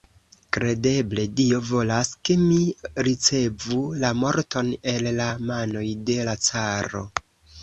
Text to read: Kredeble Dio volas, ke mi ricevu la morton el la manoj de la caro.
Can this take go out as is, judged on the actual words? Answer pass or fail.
pass